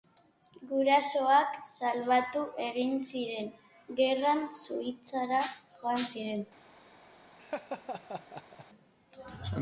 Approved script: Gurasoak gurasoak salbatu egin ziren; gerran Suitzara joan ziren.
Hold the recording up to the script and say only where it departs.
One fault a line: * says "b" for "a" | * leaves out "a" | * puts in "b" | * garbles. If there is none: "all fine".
* leaves out "gurasoak"